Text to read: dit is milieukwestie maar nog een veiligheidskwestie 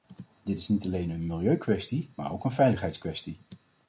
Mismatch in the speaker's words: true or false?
true